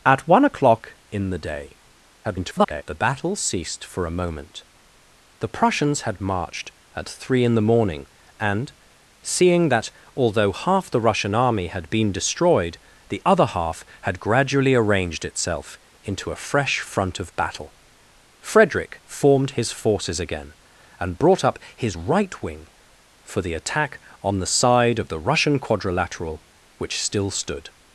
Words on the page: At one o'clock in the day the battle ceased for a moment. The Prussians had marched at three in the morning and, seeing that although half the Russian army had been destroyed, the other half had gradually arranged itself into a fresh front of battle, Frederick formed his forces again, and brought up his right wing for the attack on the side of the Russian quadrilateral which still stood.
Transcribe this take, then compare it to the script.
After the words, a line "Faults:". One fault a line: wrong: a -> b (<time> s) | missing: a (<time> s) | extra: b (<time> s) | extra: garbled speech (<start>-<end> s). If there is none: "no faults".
At one o'clock in the day [garbled] the battle ceased for a moment. The Prussians had marched at three in the morning and, seeing that although half the Russian army had been destroyed, the other half had gradually arranged itself into a fresh front of battle, Frederick formed his forces again, and brought up his right wing for the attack on the side of the Russian quadrilateral which still stood.
Faults:
extra: garbled speech (2.2-2.8 s)